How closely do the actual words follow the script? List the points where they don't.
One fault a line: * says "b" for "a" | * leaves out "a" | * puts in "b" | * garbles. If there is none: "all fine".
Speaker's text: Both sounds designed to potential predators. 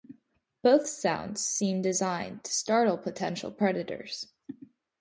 * puts in "seem"
* puts in "startle"